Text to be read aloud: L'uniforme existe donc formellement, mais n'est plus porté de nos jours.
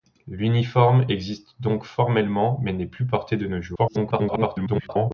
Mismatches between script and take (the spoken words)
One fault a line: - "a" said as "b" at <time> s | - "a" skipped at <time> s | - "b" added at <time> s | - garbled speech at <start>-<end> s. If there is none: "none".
- garbled speech at 3.8-5.1 s